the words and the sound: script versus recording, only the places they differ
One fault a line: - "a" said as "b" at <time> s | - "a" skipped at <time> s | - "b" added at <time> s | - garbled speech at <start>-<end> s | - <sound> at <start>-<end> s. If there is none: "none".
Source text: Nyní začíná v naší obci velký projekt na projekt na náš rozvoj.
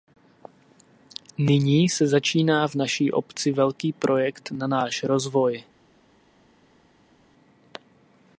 - "se" added at 1.9 s
- "projekt na" skipped at 4.7 s